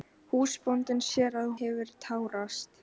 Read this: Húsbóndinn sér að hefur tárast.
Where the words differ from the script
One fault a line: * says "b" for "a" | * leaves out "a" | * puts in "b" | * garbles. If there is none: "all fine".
all fine